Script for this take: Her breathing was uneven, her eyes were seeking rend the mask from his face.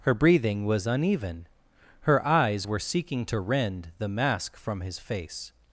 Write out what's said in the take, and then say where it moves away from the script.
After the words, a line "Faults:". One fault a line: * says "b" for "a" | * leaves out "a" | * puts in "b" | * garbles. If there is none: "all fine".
Her breathing was uneven, her eyes were seeking to rend the mask from his face.
Faults:
* puts in "to"